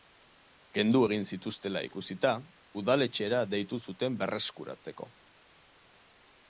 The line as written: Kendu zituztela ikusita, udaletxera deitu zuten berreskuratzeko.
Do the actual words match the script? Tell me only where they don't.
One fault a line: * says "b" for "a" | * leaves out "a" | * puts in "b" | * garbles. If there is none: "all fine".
* puts in "egin"